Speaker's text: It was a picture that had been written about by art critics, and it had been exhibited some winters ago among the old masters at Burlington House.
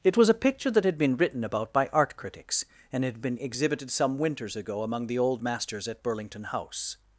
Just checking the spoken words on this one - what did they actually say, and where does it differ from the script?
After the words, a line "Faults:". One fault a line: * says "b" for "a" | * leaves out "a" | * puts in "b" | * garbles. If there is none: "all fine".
It was a picture that had been written about by art critics, and had been exhibited some winters ago among the old masters at Burlington House.
Faults:
* leaves out "it"